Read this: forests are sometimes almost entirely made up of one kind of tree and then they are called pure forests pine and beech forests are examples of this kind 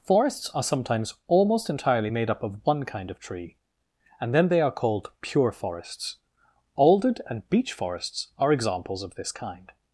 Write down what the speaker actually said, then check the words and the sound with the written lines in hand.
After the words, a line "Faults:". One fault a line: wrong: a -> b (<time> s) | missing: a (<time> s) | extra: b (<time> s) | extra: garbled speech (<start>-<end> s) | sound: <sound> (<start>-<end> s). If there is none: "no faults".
forests are sometimes almost entirely made up of one kind of tree and then they are called pure forests alded and beech forests are examples of this kind
Faults:
wrong: pine -> alded (6.7 s)